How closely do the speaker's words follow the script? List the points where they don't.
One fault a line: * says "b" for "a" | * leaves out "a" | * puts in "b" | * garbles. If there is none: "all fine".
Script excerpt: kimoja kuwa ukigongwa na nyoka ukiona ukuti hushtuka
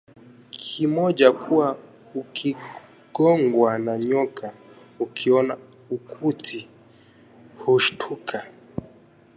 all fine